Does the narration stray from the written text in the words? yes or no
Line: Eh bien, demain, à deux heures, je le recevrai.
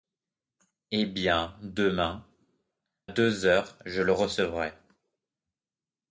yes